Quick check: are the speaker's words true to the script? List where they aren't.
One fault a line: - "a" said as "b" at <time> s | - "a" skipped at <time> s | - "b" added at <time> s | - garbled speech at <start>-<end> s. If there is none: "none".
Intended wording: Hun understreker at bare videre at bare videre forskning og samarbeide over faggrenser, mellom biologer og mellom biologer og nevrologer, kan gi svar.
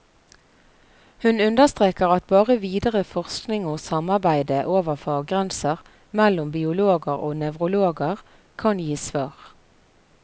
- "at bare videre" skipped at 3.0 s
- "mellom biologer og" skipped at 7.4 s